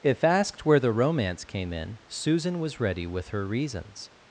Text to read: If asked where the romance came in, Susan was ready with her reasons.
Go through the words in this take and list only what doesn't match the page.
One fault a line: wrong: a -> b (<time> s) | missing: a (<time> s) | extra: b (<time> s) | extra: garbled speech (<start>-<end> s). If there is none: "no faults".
no faults